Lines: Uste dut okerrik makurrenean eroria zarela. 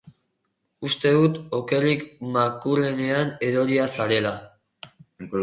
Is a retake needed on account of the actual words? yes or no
no